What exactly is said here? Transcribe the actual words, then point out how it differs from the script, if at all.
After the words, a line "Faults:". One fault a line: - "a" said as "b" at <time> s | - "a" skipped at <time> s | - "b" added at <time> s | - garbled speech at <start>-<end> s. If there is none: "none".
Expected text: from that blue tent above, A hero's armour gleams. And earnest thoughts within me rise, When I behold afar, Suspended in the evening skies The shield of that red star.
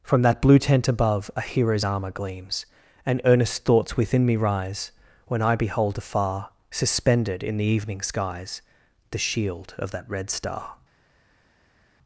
from that blue tent above, A hero's armour gleams. And earnest thoughts within me rise, When I behold afar, Suspended in the evening skies The shield of that red star.
Faults:
none